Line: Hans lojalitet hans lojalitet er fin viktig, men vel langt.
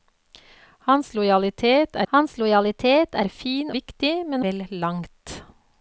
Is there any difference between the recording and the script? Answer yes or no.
no